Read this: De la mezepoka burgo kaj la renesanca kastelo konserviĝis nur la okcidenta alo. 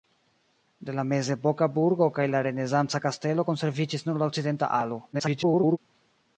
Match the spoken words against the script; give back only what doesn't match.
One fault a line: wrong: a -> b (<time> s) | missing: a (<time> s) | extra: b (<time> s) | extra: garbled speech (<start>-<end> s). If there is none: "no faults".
extra: garbled speech (5.1-5.8 s)